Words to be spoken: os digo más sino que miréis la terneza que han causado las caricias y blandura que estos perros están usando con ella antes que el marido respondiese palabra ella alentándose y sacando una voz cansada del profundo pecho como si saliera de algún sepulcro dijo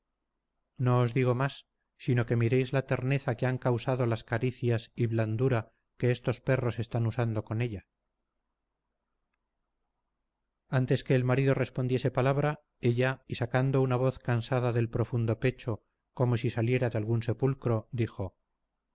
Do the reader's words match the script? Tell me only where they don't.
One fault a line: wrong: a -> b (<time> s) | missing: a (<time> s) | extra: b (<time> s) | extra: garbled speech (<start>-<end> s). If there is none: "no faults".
missing: alentándose (13.2 s)